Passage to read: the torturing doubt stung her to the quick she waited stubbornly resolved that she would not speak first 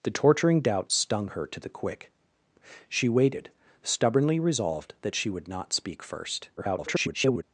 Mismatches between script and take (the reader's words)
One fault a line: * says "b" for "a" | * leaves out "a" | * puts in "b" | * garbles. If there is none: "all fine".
* garbles